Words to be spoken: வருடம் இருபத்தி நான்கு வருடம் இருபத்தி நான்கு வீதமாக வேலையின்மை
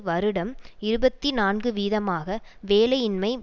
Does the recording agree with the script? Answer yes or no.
no